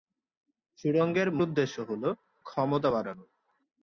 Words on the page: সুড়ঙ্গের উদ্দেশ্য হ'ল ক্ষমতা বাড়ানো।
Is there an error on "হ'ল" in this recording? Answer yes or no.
no